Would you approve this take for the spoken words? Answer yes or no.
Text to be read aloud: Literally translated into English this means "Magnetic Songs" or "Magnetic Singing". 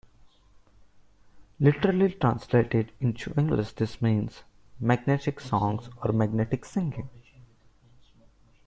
yes